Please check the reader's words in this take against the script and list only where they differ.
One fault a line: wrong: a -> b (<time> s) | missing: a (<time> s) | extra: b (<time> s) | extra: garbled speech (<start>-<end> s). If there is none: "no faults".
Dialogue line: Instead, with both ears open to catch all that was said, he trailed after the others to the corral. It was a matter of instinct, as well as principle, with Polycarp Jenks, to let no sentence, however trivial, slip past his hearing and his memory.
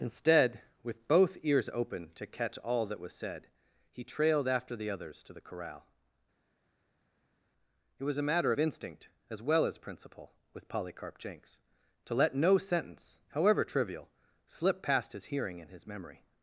no faults